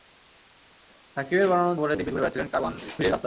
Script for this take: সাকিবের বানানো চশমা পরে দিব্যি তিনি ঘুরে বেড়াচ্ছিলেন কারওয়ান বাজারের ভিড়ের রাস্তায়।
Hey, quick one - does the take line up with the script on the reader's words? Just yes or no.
no